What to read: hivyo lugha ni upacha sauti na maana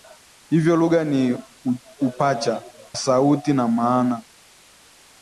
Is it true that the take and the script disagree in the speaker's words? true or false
false